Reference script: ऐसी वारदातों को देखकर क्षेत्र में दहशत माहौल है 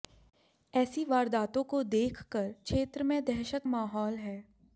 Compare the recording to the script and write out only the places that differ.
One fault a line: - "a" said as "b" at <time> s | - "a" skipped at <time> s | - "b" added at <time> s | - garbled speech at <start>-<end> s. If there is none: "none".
none